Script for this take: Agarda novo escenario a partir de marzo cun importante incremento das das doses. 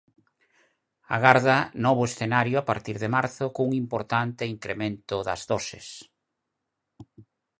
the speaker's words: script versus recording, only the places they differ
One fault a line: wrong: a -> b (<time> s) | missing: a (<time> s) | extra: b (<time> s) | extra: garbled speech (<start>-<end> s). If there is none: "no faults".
missing: das (5.4 s)